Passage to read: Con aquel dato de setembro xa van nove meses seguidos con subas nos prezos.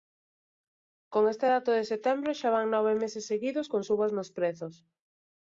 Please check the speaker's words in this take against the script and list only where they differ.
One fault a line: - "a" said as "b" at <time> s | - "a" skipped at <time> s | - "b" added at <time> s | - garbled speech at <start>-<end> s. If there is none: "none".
- "aquel" said as "este" at 1.3 s